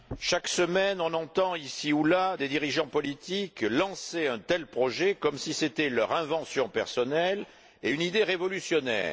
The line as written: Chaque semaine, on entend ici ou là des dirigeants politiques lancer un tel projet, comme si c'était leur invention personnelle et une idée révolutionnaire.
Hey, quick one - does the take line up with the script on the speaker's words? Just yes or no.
yes